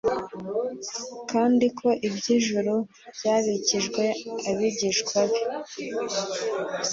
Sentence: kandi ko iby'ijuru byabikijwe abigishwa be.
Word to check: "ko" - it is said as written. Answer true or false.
true